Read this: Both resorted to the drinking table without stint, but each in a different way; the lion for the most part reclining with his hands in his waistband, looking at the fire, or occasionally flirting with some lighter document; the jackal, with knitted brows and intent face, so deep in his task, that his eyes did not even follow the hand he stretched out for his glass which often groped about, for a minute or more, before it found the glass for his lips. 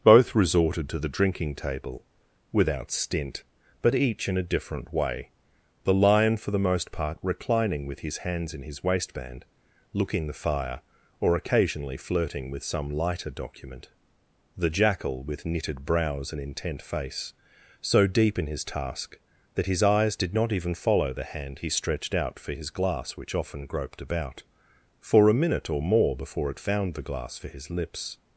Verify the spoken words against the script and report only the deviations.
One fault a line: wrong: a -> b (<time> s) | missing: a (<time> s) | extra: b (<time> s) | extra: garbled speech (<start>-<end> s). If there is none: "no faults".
missing: at (10.3 s)